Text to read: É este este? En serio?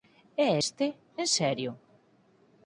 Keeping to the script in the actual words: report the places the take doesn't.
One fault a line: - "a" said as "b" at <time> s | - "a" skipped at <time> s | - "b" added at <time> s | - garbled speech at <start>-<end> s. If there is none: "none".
- "este" skipped at 0.9 s